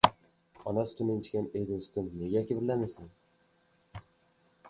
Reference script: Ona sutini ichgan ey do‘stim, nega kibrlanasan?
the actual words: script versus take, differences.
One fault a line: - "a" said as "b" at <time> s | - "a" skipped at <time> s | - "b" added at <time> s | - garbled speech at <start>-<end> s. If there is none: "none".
none